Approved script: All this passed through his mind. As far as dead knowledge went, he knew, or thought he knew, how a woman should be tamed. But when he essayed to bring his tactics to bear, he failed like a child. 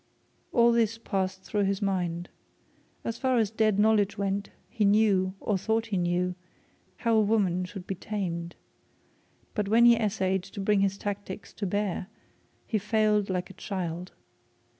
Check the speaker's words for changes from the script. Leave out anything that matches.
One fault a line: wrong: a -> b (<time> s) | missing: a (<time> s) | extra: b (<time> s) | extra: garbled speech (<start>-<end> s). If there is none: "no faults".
no faults